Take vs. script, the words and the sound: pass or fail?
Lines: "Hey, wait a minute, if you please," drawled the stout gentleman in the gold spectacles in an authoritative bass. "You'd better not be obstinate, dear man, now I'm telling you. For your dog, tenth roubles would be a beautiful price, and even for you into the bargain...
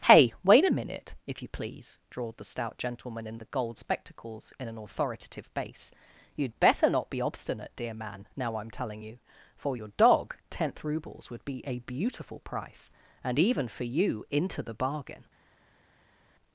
pass